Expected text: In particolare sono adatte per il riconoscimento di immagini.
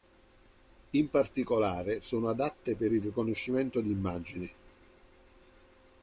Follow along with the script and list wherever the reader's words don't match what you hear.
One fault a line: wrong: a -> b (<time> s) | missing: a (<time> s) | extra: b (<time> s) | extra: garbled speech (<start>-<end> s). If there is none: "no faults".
no faults